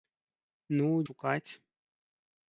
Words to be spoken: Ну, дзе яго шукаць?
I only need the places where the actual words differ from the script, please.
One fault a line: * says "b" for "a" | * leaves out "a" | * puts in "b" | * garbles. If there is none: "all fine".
* leaves out "дзе яго"